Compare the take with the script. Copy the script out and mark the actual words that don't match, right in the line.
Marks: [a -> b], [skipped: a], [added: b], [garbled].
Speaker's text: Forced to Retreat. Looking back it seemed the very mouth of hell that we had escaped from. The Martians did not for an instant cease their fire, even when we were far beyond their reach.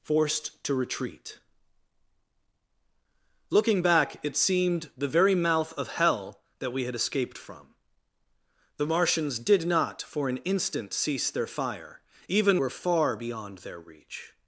Forced to Retreat. Looking back it seemed the very mouth of hell that we had escaped from. The Martians did not for an instant cease their fire, even [skipped: when we] were far beyond their reach.